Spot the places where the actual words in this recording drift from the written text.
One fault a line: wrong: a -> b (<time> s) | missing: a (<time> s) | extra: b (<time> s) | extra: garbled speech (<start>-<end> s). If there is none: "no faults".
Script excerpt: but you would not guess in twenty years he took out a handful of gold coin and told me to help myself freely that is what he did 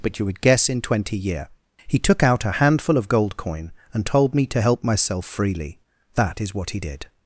missing: not (0.4 s)
wrong: years -> year (1.2 s)